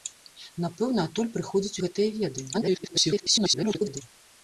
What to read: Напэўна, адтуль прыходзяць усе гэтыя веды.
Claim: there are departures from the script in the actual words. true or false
true